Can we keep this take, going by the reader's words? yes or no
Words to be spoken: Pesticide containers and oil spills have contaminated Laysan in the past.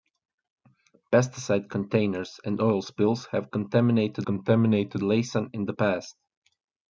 no